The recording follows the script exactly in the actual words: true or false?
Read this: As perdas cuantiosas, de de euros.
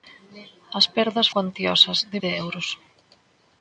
true